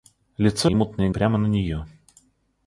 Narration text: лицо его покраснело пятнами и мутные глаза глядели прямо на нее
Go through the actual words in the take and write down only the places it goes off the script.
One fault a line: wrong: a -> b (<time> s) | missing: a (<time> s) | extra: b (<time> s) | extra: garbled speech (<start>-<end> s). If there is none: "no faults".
missing: его покраснело пятнами (0.7 s)
missing: глаза глядели (1.1 s)